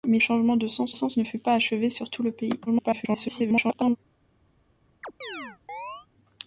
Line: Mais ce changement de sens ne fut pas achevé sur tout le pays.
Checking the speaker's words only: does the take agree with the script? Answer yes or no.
no